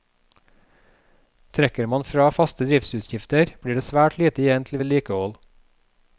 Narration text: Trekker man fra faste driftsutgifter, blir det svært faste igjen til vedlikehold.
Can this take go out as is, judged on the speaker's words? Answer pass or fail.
fail